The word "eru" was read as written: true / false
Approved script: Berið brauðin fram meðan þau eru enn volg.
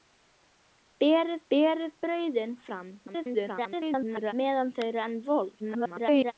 true